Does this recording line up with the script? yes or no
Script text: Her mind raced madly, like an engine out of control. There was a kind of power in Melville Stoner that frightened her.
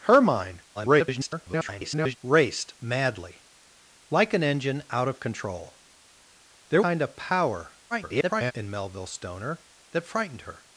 no